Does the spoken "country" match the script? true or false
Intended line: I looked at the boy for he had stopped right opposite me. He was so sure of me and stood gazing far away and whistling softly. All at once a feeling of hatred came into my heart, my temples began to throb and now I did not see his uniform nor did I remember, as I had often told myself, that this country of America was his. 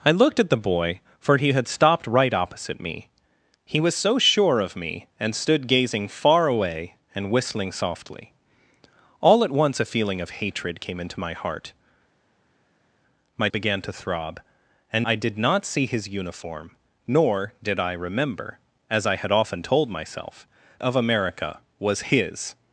false